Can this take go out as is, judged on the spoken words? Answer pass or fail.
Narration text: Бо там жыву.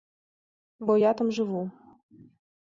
fail